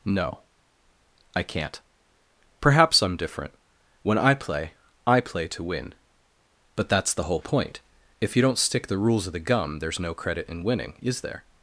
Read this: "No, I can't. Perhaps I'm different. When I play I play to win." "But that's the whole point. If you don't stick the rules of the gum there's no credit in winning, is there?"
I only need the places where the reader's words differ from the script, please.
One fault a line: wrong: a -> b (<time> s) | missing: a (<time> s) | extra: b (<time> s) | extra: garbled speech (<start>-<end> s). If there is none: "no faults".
no faults